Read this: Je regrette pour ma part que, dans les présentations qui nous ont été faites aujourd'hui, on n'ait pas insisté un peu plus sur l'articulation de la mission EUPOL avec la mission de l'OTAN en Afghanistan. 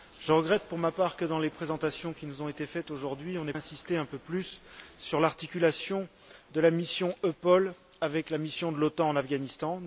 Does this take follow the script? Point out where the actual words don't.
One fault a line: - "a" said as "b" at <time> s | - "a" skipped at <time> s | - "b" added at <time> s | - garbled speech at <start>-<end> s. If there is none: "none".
- "pas" skipped at 3.5 s